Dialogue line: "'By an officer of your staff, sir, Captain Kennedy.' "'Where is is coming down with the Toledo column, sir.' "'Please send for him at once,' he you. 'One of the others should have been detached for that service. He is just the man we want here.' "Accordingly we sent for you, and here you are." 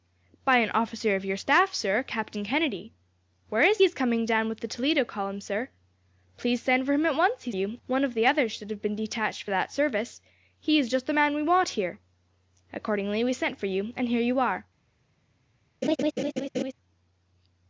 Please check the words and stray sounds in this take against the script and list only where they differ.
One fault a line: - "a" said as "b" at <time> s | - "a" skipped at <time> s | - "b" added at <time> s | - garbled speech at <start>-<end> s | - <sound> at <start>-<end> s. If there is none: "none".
- laugh at 15.8-16.7 s